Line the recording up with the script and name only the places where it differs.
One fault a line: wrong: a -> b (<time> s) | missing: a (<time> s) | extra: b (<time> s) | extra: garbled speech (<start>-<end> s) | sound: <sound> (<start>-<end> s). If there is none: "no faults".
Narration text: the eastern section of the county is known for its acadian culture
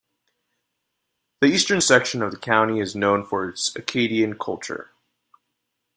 no faults